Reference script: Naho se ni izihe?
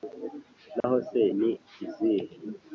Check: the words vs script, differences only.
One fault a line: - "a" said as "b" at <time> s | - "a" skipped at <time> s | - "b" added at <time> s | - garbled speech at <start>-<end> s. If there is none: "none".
none